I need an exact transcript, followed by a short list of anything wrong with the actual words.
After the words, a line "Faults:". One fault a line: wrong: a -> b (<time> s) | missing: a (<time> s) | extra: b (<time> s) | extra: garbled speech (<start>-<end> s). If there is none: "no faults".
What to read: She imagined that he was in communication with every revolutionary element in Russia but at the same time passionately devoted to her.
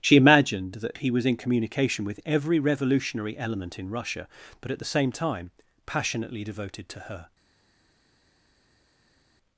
She imagined that he was in communication with every revolutionary element in Russia but at the same time passionately devoted to her.
Faults:
no faults